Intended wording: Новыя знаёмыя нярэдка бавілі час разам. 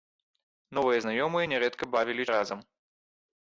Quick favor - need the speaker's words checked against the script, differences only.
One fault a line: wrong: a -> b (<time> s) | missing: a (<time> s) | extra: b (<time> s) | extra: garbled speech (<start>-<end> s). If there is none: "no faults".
missing: час (2.2 s)